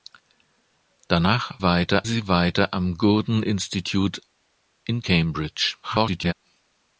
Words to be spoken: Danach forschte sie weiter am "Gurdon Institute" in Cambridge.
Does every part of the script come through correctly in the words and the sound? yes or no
no